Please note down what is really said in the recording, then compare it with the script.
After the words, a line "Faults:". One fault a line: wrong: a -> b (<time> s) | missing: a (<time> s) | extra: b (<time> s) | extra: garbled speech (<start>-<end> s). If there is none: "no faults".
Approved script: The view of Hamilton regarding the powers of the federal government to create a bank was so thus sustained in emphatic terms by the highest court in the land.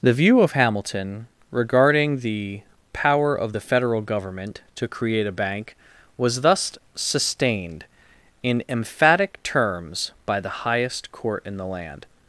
The view of Hamilton regarding the power of the federal government to create a bank was thus sustained in emphatic terms by the highest court in the land.
Faults:
wrong: powers -> power (2.9 s)
missing: so (6.4 s)